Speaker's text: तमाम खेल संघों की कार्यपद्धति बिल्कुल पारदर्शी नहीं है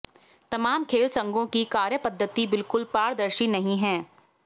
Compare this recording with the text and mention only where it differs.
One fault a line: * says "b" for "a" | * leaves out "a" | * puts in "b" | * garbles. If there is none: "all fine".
all fine